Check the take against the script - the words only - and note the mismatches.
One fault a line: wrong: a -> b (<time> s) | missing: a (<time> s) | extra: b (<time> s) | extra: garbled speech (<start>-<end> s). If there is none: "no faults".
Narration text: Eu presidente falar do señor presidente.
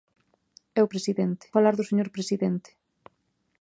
no faults